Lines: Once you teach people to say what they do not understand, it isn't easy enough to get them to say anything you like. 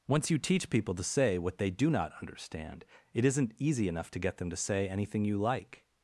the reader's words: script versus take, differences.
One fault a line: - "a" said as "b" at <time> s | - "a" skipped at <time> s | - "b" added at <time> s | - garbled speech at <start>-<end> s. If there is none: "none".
none